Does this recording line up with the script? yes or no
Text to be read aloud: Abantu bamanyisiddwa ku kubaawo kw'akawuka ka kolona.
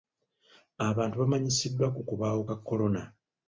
no